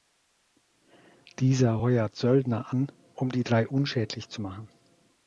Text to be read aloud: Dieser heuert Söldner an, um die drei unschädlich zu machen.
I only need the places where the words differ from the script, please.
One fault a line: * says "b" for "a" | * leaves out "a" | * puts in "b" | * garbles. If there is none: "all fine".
all fine